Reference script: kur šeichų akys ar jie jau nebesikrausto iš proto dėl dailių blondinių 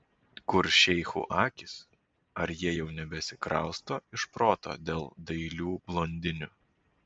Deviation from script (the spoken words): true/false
false